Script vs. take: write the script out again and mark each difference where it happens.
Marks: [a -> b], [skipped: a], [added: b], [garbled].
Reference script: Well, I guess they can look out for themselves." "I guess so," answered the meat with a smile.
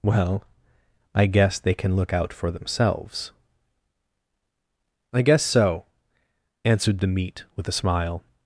Well, I guess they can look out for themselves." "I guess so," answered the meat with a smile.